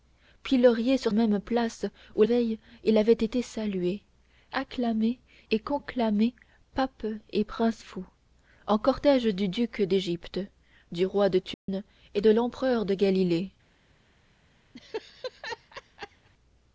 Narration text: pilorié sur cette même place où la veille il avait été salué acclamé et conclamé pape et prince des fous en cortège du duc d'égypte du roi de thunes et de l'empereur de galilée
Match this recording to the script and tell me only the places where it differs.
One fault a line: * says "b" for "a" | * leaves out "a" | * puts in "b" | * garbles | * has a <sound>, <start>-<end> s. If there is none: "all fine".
* leaves out "cette"
* leaves out "la"
* leaves out "des"
* has a dropout, 11.5-11.7 s
* has a laugh, 14.7-16.3 s